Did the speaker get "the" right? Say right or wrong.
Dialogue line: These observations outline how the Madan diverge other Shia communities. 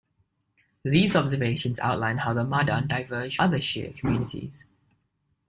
right